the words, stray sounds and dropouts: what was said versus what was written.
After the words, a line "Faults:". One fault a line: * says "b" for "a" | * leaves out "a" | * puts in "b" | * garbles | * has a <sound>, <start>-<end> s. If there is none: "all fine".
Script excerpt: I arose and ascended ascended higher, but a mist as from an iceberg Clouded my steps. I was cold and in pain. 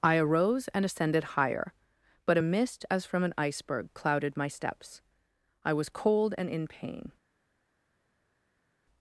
I arose and ascended higher, but a mist as from an iceberg Clouded my steps. I was cold and in pain.
Faults:
* leaves out "ascended"